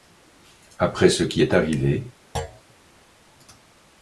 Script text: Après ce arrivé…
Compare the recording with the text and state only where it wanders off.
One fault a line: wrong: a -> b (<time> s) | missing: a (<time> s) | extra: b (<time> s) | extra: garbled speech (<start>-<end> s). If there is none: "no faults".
extra: qui est (1.2 s)